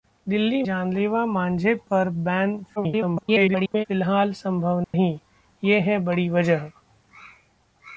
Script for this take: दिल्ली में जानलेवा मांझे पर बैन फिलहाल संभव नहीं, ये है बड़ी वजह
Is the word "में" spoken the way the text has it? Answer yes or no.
no